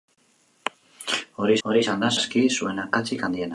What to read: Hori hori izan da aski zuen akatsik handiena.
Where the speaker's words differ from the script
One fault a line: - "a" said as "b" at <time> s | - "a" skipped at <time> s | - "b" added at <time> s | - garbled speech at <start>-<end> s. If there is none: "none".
none